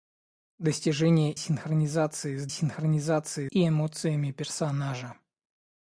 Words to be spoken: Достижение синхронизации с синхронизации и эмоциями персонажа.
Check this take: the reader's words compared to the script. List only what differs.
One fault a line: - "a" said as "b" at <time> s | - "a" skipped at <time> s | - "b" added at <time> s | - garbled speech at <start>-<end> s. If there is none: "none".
none